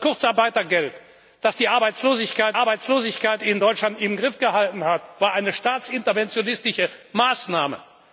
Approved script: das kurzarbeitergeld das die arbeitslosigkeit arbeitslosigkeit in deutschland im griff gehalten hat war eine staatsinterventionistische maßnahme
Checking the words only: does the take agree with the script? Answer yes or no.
yes